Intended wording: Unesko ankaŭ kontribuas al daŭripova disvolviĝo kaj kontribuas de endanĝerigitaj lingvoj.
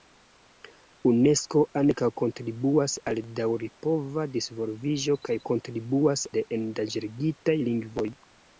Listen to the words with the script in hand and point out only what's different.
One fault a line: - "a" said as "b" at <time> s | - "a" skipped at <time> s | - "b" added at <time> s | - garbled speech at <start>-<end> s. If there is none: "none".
none